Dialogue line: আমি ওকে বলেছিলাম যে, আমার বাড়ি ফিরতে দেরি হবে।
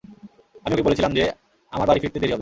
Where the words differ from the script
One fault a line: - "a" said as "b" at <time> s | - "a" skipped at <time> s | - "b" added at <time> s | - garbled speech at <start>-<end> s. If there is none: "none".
none